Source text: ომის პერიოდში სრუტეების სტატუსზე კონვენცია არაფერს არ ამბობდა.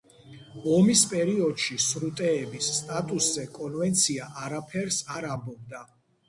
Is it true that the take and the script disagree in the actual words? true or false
false